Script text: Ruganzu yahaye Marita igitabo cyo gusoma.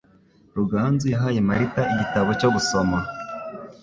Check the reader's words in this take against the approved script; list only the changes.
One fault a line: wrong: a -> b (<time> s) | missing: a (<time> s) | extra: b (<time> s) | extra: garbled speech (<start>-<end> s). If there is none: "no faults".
no faults